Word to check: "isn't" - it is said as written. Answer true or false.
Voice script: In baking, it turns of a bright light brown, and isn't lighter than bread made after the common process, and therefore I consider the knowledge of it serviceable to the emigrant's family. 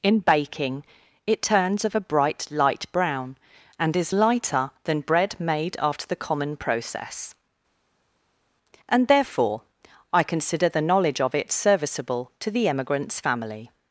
false